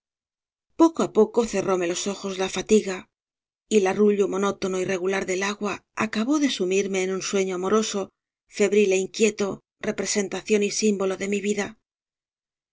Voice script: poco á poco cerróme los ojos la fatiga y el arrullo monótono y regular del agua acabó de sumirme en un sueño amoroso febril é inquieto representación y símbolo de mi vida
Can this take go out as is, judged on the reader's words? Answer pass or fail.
pass